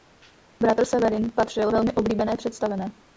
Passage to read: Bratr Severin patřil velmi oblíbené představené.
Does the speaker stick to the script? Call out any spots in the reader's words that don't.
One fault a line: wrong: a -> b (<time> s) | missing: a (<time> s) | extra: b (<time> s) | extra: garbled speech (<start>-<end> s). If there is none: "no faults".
no faults